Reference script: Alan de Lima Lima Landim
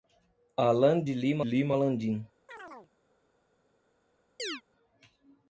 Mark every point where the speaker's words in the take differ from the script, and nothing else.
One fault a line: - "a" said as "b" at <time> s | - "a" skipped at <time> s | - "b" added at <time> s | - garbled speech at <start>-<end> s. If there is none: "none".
none